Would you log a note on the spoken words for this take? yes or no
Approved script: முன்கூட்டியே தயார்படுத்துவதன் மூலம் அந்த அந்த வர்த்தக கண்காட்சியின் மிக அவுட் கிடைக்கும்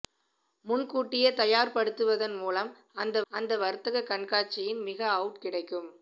no